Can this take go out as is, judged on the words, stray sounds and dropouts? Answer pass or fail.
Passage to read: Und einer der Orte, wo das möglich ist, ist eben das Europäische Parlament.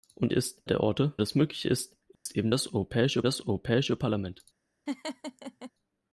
fail